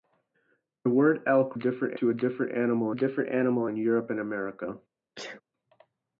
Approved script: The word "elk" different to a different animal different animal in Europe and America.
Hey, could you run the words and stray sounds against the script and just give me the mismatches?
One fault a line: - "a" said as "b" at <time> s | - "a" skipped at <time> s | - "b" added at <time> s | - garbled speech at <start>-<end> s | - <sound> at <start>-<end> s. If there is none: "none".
- sneeze at 5.2-5.4 s